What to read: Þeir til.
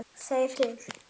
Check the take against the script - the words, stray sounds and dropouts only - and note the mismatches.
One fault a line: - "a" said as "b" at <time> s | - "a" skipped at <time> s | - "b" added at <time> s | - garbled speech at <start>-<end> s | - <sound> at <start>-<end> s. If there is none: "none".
none